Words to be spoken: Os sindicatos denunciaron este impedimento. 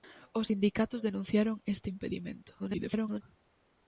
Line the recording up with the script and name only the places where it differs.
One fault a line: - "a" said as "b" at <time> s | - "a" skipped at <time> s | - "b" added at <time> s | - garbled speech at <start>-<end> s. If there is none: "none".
- garbled speech at 2.6-3.2 s